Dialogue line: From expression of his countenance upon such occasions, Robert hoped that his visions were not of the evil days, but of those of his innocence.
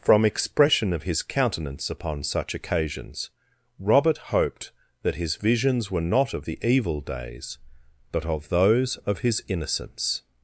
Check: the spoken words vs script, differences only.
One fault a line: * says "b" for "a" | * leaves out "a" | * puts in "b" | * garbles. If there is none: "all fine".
all fine